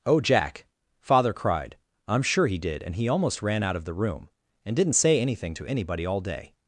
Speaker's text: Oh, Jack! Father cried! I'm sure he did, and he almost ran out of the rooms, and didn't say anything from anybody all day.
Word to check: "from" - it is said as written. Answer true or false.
false